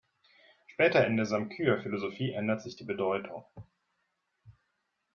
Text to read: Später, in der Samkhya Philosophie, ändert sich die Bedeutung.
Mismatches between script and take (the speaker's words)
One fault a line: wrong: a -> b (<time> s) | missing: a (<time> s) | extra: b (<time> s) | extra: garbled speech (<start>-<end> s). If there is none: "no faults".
no faults